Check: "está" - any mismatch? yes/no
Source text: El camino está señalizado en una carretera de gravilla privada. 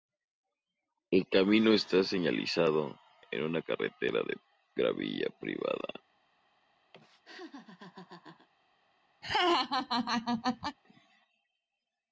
no